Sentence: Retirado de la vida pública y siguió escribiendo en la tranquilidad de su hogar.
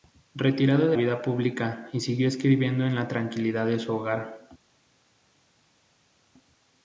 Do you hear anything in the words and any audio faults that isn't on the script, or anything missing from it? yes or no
yes